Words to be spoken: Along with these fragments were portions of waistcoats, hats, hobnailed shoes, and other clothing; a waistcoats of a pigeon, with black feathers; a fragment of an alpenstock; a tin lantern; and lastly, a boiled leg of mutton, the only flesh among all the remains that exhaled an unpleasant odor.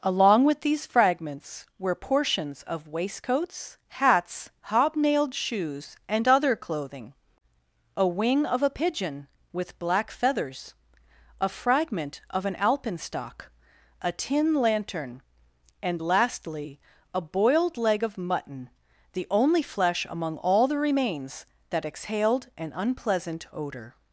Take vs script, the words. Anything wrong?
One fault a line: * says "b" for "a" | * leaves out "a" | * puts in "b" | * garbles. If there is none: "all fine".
* says "wing" for "waistcoats"